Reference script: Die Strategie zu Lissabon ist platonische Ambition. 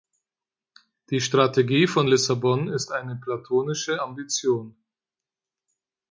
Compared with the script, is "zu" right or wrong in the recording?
wrong